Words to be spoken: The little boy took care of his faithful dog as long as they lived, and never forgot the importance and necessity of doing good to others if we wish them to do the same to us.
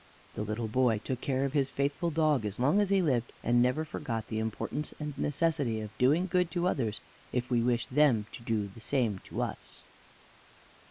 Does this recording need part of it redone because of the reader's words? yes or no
yes